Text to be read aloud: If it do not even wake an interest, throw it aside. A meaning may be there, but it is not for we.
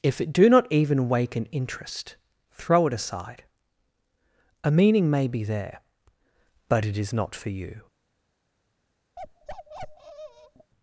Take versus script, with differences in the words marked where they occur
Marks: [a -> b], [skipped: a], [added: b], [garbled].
If it do not even wake an interest, throw it aside. A meaning may be there, but it is not for [we. -> you]